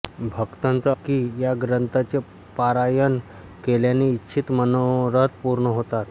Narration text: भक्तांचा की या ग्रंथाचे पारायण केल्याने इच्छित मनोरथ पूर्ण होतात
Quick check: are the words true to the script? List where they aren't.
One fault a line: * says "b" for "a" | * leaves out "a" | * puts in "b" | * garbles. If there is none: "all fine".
all fine